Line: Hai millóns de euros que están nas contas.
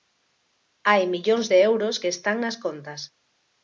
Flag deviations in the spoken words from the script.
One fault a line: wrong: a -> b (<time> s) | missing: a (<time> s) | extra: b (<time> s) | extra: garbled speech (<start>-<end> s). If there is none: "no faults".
no faults